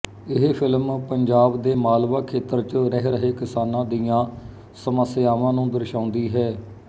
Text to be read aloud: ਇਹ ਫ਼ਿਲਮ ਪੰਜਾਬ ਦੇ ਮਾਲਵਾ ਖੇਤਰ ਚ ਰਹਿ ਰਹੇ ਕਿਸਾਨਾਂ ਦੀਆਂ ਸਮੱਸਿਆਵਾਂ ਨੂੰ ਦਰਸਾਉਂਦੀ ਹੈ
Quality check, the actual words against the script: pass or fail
pass